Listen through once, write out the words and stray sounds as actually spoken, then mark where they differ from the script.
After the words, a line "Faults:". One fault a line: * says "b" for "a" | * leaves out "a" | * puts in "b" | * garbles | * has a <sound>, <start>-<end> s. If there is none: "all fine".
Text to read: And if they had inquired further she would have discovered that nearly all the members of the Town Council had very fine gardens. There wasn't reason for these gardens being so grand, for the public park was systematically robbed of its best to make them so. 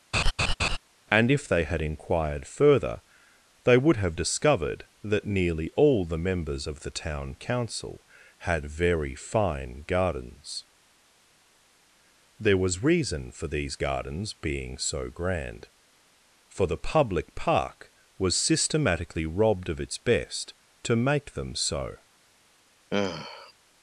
And if they had inquired further they would have discovered that nearly all the members of the Town Council had very fine gardens. There was reason for these gardens being so grand, for the public park was systematically robbed of its best to make them so.
Faults:
* has a laugh, 0.1-0.8 s
* says "they" for "she"
* says "was" for "wasn't"
* has a sigh, 22.9-23.5 s